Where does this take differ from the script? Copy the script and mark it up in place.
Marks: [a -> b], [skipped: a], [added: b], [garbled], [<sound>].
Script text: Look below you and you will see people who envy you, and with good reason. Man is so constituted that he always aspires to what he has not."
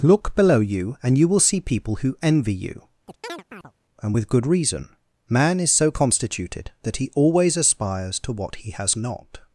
Look below you and you will see people who envy you, [chirp] and with good reason. Man is so constituted that he always aspires to what he has not."